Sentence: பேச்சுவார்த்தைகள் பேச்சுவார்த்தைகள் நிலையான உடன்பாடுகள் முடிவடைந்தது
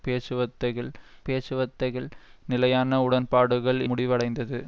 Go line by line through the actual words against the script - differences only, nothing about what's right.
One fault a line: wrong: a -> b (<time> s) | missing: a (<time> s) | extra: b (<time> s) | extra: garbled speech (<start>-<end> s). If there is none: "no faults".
no faults